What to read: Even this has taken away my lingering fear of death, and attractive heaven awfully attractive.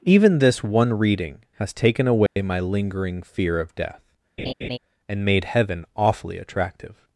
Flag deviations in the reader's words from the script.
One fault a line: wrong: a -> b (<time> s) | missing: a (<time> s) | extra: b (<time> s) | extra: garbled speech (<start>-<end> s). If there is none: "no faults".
extra: one reading (0.6 s)
wrong: attractive -> made (5.2 s)